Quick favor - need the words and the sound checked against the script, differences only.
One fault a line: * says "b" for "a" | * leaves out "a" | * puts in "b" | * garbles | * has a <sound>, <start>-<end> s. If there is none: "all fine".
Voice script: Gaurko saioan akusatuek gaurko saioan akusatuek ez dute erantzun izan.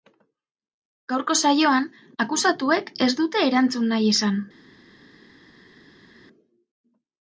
* leaves out "gaurko saioan akusatuek"
* puts in "nahi"